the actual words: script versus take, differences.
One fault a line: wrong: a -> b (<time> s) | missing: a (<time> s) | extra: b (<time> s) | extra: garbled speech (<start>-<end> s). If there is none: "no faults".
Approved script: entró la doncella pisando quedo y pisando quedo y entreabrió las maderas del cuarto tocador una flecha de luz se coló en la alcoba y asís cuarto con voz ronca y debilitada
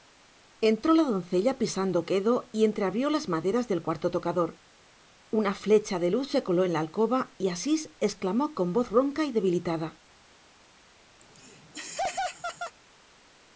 missing: pisando quedo y (2.6 s)
wrong: cuarto -> exclamó (8.0 s)